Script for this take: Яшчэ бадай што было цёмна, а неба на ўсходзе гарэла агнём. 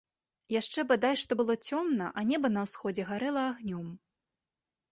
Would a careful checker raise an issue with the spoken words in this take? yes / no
no